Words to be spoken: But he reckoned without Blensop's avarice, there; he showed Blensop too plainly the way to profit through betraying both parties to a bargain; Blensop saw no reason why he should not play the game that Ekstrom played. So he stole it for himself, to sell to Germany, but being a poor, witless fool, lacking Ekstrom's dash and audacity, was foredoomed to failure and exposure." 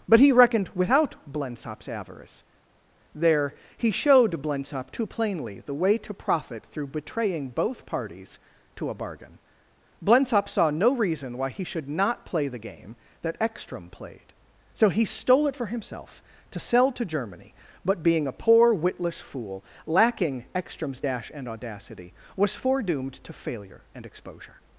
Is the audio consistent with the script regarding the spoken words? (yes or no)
yes